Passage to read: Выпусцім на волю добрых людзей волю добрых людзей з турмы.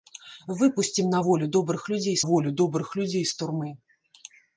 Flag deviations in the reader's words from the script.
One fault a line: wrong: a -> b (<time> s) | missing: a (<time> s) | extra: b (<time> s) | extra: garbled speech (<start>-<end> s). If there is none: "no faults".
no faults